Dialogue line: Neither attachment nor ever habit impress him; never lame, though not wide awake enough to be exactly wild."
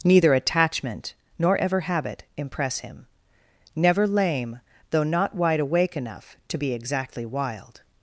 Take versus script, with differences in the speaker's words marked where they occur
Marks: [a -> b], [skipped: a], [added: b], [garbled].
Neither attachment nor ever habit impress him; never lame, though not wide awake enough to be exactly wild."